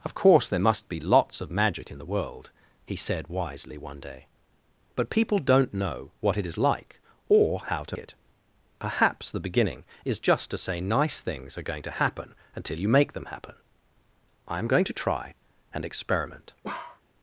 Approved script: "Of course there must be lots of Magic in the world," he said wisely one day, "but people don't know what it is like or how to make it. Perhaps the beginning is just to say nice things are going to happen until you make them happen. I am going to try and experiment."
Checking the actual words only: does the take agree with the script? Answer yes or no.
no